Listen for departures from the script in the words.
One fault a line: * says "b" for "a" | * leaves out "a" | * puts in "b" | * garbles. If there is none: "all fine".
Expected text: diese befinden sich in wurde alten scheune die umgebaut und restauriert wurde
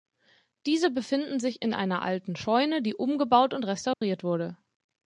* says "einer" for "wurde"